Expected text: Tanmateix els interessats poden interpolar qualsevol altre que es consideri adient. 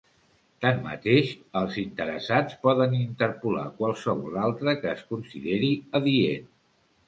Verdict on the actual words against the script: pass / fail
pass